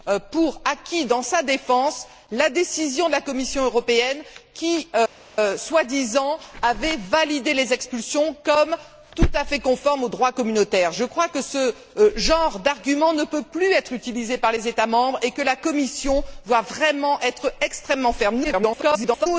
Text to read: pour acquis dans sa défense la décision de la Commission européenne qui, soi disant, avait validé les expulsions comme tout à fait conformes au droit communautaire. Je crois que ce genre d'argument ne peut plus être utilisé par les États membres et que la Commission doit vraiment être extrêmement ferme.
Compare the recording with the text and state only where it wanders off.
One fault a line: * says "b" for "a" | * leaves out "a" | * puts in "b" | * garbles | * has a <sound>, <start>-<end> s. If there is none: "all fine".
* garbles